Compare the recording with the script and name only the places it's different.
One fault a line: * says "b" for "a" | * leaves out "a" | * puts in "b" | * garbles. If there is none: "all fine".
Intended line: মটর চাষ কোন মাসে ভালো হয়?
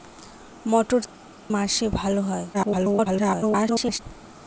* leaves out "চাষ কোন"
* garbles